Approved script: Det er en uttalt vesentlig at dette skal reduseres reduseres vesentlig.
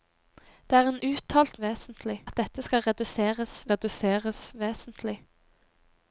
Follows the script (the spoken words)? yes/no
yes